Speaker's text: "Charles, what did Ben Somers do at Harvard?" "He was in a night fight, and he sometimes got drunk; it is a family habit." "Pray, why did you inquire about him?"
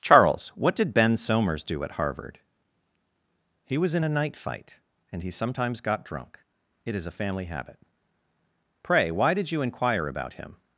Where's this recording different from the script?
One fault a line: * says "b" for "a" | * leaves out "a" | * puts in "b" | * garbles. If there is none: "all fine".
all fine